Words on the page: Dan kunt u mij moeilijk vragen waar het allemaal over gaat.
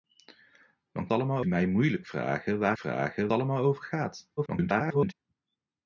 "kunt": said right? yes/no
no